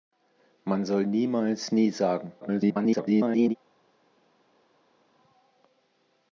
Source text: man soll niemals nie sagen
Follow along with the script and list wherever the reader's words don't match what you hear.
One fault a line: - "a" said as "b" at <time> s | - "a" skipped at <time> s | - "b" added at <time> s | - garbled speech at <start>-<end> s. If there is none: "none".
- garbled speech at 2.4-3.6 s